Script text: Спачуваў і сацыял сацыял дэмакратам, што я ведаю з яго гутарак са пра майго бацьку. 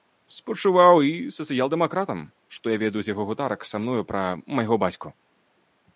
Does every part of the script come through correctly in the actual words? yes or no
no